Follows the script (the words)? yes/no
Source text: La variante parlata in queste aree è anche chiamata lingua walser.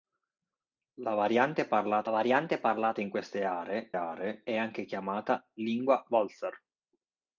no